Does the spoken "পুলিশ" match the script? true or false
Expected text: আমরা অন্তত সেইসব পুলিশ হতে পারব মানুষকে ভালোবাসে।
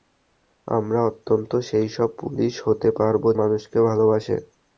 true